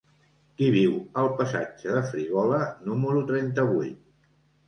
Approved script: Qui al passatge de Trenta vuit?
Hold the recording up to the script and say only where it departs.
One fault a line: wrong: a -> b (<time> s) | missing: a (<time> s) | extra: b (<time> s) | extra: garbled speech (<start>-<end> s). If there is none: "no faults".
extra: viu (0.8 s)
extra: Frígola número (2.1 s)